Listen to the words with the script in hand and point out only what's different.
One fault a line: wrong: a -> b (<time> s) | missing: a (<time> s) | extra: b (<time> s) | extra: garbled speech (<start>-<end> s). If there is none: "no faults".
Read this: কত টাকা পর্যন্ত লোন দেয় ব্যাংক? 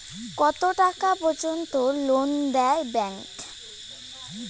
no faults